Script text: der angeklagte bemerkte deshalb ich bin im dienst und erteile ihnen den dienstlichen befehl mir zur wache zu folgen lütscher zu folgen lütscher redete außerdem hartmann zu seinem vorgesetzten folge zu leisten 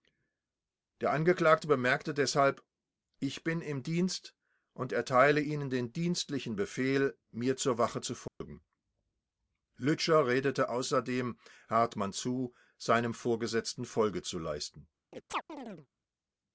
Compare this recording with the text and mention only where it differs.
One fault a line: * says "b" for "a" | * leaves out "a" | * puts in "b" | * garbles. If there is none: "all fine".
* leaves out "zu folgen lütscher"